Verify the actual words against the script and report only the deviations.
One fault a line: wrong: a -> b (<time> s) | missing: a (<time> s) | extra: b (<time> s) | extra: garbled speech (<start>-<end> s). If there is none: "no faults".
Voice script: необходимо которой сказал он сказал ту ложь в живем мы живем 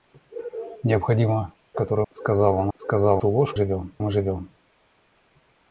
no faults